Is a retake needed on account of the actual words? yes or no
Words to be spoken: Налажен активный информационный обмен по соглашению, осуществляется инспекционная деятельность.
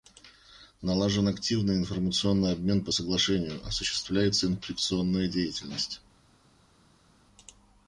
no